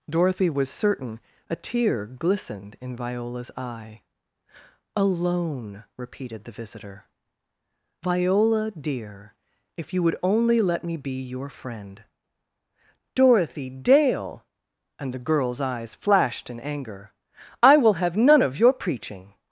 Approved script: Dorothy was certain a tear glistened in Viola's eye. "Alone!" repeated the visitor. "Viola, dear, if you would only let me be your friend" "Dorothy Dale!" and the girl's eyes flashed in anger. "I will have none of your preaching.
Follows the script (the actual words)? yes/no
yes